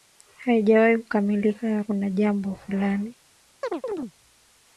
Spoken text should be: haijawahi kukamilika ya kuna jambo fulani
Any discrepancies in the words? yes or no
no